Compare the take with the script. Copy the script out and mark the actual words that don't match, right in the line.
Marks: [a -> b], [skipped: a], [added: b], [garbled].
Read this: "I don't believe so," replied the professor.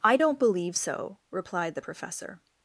"I don't believe so," replied the professor.